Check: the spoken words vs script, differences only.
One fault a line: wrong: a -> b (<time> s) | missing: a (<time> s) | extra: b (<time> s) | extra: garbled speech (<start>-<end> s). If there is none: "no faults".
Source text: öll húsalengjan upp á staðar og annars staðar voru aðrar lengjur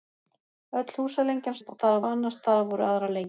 no faults